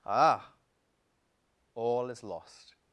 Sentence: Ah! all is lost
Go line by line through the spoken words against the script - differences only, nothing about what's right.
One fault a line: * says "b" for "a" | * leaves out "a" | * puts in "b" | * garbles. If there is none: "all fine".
all fine